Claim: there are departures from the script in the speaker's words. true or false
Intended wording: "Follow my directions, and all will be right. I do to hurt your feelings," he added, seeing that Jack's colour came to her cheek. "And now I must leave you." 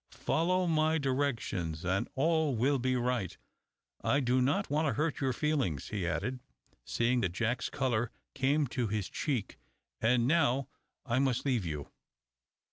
true